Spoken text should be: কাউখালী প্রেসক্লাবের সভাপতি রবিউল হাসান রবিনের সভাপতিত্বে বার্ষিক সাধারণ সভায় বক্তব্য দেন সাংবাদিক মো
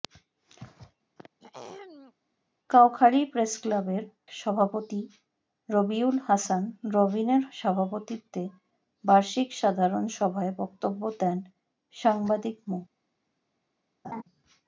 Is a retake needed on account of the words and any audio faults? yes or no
yes